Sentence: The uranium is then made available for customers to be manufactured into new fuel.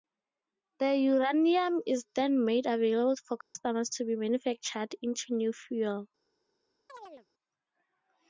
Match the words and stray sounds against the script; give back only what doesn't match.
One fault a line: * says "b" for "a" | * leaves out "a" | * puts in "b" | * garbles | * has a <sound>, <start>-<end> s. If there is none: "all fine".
* has a dropout, 3.4-3.6 s
* has a chirp, 6.9-7.3 s